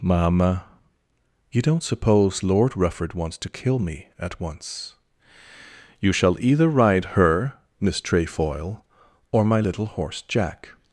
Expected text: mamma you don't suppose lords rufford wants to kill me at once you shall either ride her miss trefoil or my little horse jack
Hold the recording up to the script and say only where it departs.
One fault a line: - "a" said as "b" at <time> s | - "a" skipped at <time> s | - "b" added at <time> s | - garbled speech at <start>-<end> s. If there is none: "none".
- "lords" said as "lord" at 2.4 s